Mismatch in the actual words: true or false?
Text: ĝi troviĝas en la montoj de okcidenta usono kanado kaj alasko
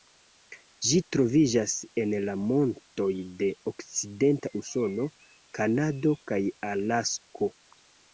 false